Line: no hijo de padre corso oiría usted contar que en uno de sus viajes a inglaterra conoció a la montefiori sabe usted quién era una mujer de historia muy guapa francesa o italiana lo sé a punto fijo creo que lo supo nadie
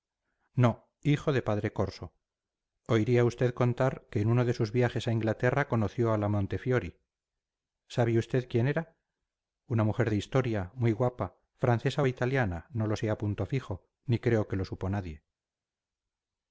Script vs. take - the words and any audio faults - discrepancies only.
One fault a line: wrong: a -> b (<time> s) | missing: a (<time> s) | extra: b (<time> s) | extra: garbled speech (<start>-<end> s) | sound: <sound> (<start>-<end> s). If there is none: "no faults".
extra: no (12.7 s)
extra: ni (14.0 s)